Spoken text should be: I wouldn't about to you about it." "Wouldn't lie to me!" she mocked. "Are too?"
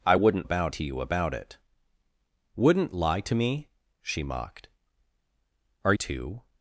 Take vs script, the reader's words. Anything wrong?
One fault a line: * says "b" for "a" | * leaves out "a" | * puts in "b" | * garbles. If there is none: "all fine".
all fine